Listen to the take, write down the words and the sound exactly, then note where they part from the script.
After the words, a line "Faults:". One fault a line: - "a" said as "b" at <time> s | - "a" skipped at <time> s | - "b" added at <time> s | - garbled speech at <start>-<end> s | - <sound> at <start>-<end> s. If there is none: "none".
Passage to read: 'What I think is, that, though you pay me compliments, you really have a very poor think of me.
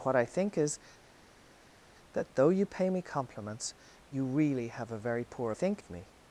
'What I think is, that, though you pay me compliments, you really have a very poor think of me.
Faults:
none